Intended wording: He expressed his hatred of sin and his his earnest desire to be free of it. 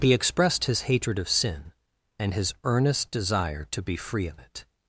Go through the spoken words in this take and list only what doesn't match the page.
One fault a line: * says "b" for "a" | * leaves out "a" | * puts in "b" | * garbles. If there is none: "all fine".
* leaves out "his"